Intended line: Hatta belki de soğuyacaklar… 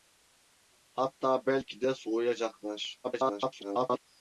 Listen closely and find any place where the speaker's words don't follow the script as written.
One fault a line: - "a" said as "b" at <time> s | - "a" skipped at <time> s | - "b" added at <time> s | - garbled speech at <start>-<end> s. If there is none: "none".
- garbled speech at 3.0-4.0 s